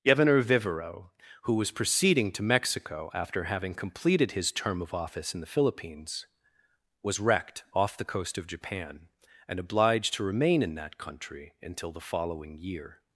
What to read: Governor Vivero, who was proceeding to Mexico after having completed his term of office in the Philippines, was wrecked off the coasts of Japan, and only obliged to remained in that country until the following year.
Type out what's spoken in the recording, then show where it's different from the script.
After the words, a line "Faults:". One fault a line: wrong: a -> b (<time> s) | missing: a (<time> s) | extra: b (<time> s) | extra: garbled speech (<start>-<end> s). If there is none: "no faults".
Governor Vivero, who was proceeding to Mexico after having completed his term of office in the Philippines, was wrecked off the coast of Japan, and obliged to remain in that country until the following year.
Faults:
wrong: coasts -> coast (8.1 s)
missing: only (9.6 s)
wrong: remained -> remain (10.2 s)